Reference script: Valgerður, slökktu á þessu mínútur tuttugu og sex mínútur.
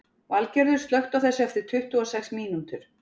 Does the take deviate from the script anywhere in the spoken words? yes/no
yes